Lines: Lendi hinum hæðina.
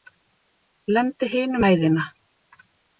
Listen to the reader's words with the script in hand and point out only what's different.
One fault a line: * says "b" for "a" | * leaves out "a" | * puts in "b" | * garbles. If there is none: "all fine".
all fine